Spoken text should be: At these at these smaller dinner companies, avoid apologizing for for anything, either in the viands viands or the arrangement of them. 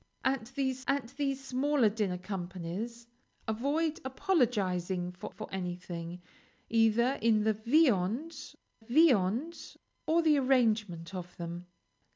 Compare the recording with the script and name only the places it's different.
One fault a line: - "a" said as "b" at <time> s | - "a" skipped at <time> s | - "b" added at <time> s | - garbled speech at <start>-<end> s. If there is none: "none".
none